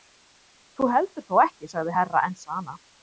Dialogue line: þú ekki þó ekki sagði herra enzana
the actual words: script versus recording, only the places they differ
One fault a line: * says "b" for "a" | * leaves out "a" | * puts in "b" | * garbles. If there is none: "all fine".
* says "heldur" for "ekki"